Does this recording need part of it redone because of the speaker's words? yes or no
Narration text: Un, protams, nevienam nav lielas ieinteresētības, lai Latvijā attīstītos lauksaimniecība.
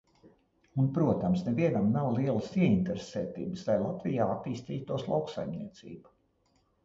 no